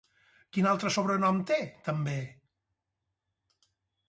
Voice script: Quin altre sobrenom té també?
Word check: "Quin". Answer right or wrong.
right